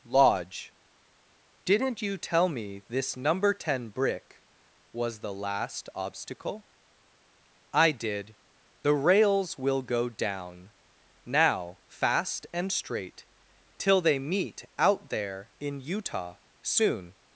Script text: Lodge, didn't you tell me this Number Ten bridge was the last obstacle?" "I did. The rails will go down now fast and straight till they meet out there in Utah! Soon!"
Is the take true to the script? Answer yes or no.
no